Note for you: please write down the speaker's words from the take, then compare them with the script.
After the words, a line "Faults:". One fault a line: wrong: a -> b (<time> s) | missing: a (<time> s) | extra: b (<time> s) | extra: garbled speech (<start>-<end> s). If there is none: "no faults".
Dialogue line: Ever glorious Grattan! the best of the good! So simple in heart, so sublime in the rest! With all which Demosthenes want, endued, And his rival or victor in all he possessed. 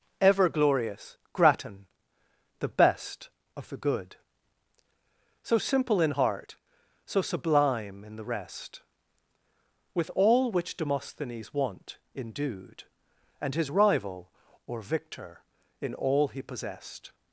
Ever glorious Grattan! the best of the good! So simple in heart, so sublime in the rest! With all which Demosthenes want, endued, And his rival or victor in all he possessed.
Faults:
no faults